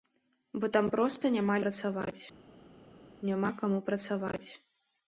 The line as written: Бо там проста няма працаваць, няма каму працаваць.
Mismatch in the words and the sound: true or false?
false